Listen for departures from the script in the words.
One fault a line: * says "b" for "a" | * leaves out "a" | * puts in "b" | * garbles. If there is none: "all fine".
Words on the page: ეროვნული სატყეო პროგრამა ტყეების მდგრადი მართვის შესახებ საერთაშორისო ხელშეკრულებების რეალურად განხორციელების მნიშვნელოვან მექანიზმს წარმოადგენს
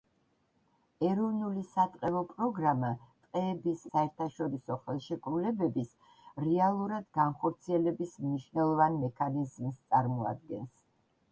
* leaves out "მდგრადი მართვის შესახებ"